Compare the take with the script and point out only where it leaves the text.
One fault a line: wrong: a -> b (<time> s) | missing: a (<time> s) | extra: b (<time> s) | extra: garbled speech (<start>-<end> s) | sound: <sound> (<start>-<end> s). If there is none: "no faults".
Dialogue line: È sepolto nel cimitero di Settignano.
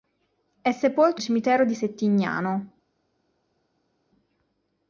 missing: nel (1.2 s)